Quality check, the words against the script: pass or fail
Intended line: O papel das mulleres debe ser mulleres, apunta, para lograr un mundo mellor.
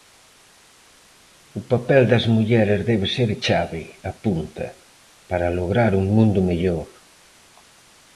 fail